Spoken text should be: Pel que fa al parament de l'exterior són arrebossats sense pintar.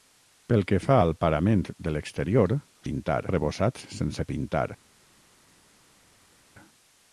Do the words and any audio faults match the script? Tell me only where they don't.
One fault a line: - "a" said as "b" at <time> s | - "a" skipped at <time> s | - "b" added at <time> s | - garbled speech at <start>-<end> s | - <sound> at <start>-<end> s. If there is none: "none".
- "són" said as "pintar" at 2.9 s